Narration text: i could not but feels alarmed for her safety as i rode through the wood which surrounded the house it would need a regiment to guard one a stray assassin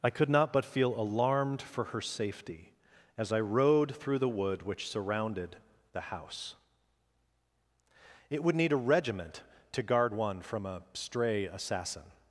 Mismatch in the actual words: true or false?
true